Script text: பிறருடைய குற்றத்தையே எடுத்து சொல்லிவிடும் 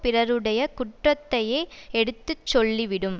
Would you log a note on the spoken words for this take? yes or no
no